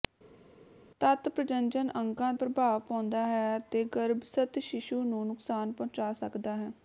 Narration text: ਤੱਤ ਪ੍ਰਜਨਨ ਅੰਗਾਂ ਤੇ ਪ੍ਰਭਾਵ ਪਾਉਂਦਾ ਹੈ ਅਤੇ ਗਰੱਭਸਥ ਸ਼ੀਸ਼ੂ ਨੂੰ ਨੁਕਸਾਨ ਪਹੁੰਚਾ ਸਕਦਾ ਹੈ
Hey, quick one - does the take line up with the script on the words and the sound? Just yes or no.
no